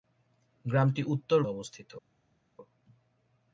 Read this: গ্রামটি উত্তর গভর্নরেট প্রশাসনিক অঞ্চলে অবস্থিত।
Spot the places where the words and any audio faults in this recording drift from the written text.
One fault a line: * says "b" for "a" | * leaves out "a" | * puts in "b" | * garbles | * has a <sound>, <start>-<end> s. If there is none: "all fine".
* leaves out "গভর্নরেট প্রশাসনিক অঞ্চলে"